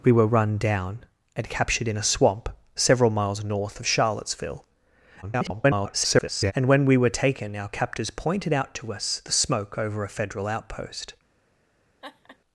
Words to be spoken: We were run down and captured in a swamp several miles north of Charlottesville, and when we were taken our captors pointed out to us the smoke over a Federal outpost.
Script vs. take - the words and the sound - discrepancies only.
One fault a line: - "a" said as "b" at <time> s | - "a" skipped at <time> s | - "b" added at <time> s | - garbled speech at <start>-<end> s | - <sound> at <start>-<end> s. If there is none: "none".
- garbled speech at 5.2-6.5 s
- laugh at 12.0-12.4 s